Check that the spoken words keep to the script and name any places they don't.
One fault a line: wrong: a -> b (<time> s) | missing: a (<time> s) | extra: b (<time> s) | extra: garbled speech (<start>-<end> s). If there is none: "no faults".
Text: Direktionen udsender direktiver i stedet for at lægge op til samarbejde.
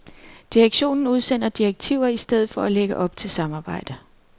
no faults